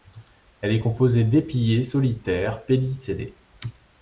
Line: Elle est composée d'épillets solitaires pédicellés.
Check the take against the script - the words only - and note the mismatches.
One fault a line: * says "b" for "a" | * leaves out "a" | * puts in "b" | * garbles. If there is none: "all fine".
all fine